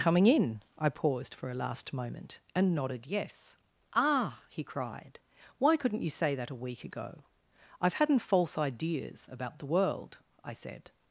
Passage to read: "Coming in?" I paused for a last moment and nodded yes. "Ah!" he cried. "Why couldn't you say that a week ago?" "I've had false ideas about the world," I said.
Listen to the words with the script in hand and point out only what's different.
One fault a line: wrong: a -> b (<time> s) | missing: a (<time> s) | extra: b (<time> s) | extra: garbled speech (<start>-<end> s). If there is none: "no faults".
wrong: had -> hadn't (7.9 s)